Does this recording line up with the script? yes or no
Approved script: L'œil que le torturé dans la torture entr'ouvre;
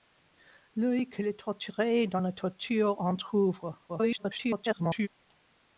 no